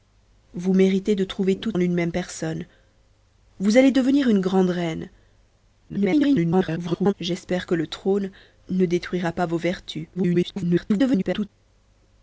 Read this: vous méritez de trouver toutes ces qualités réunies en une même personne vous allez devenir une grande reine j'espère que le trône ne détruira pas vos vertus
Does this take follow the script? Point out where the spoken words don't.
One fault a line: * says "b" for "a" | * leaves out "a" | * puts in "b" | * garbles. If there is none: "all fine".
* leaves out "ces qualités réunies"
* garbles
* garbles